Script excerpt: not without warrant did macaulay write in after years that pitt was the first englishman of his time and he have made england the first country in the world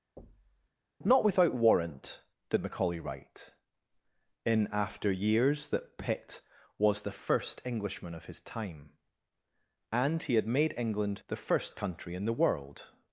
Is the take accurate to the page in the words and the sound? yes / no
no